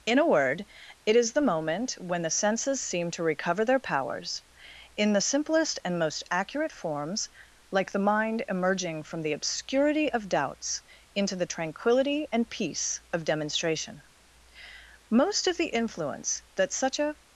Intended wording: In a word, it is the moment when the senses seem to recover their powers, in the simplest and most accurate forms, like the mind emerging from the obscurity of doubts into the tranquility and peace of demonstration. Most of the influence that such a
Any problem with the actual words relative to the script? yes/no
no